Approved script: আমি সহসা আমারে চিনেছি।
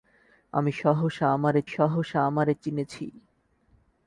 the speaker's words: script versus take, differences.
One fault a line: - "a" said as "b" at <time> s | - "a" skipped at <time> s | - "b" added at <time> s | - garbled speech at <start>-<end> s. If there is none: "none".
- "সহসা আমারে" added at 1.7 s